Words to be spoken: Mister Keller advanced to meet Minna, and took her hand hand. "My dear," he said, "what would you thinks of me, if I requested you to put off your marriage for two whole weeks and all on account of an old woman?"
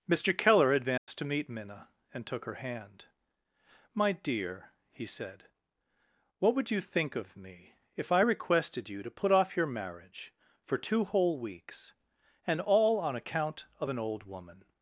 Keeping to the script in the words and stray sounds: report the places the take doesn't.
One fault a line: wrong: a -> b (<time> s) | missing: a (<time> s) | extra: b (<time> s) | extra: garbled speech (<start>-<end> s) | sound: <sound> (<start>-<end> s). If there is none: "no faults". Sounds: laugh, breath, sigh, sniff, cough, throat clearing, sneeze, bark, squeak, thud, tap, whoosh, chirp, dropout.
sound: dropout (1.0-1.1 s)
missing: hand (3.0 s)
wrong: thinks -> think (6.8 s)